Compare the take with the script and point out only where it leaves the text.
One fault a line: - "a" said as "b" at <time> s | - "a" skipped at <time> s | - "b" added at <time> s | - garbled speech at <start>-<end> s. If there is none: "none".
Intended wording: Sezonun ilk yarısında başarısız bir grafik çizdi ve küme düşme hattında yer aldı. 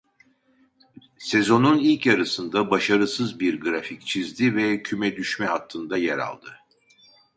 none